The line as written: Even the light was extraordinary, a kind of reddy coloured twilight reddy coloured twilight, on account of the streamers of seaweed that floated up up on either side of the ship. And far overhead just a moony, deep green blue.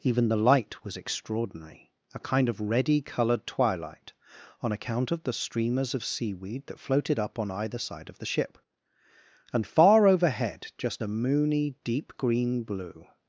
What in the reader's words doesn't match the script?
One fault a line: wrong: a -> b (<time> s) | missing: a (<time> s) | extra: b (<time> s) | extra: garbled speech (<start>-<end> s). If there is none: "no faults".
missing: reddy coloured twilight (4.1 s)
missing: up (7.4 s)